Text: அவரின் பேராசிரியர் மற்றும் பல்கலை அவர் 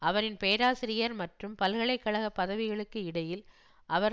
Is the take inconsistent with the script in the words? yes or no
yes